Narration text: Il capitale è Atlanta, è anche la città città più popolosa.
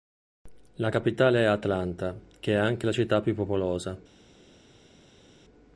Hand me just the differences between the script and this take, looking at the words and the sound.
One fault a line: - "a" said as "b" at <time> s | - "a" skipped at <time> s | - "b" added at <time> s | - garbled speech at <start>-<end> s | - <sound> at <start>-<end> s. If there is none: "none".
- "Il" said as "La" at 0.8 s
- "che" added at 2.4 s
- "città" skipped at 3.2 s